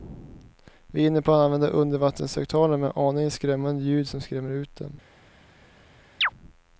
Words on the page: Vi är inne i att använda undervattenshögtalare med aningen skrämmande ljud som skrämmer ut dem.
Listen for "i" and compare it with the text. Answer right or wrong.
wrong